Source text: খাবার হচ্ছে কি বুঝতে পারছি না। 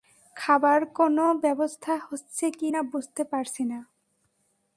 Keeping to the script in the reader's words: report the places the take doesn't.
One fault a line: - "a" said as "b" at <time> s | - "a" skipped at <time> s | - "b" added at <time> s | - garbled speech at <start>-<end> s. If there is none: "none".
- "কোনো ব্যবস্থা" added at 1.0 s
- "না" added at 2.7 s